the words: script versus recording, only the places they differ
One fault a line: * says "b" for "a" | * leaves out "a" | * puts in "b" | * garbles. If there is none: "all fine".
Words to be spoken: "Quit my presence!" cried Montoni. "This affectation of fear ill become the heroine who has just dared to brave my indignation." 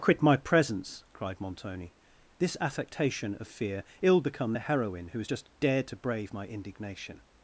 all fine